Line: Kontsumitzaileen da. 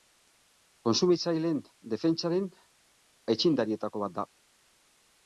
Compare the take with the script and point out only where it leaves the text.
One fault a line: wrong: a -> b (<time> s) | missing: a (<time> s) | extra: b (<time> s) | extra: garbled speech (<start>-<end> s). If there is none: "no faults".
extra: defentsaren aitzindarietako bat (1.9 s)